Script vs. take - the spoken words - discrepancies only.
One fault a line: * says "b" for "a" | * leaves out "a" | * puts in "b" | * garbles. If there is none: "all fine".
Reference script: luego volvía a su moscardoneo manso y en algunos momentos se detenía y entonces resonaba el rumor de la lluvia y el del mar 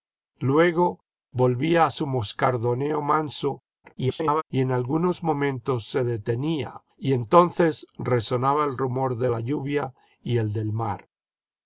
* garbles